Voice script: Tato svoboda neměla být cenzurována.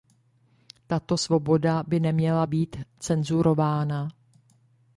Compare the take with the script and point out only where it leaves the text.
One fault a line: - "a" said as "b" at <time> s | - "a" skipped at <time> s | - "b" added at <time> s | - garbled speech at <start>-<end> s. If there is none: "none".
- "by" added at 1.9 s